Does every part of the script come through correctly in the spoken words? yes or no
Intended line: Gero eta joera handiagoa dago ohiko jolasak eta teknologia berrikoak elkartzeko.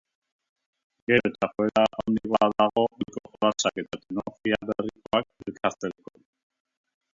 yes